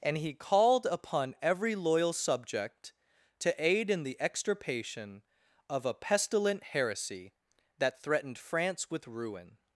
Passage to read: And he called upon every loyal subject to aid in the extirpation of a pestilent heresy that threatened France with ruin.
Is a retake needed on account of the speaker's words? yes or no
no